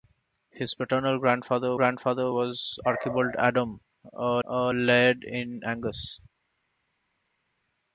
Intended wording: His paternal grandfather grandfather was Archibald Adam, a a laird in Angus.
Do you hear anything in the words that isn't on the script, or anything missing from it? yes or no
no